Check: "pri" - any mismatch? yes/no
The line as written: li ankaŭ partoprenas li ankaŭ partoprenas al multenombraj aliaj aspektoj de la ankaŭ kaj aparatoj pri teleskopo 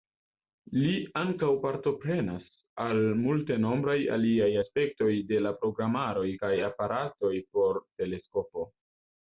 yes